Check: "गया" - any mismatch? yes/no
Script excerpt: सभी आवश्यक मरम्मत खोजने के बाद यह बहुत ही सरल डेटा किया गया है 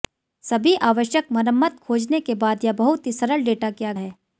yes